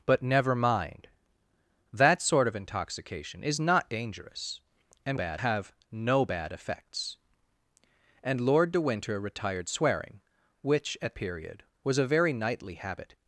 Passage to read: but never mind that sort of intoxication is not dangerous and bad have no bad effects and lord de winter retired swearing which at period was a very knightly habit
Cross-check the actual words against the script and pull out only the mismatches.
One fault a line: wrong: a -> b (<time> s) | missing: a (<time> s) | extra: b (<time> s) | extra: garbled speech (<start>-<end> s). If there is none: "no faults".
no faults